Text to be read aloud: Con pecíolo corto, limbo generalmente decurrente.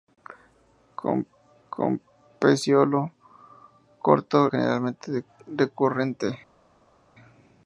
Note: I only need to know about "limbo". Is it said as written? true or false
false